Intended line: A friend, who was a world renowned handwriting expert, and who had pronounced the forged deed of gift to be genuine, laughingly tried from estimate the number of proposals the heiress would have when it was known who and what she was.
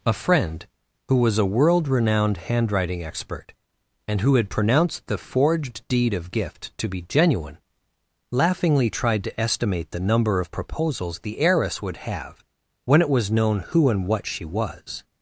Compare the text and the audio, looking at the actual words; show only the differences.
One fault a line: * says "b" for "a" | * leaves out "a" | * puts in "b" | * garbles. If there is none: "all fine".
* says "to" for "from"